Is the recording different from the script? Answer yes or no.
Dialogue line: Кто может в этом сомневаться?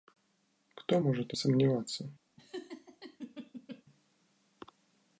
yes